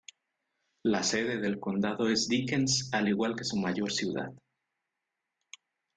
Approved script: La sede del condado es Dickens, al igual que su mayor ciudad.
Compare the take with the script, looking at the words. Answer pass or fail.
pass